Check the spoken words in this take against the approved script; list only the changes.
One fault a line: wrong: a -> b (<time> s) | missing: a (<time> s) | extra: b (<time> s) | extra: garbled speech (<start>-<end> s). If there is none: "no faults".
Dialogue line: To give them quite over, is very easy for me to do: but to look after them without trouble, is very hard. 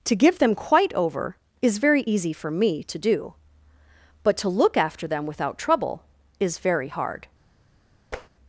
no faults